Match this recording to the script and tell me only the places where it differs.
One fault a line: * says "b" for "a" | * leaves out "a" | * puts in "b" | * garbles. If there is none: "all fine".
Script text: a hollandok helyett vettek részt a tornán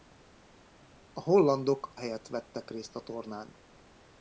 all fine